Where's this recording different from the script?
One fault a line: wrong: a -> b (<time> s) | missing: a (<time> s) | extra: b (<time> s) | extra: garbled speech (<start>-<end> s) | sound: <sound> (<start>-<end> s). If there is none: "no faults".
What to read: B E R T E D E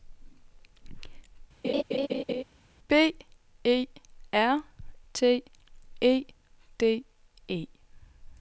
sound: laugh (1.6-2.4 s)